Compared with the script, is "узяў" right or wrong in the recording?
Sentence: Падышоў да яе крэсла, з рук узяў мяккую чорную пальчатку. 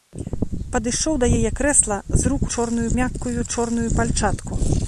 wrong